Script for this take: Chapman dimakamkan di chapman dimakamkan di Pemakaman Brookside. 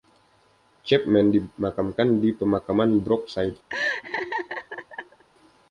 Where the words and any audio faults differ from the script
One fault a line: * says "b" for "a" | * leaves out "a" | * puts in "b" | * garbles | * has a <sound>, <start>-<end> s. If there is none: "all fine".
* leaves out "chapman dimakamkan di"
* has a laugh, 3.7-5.2 s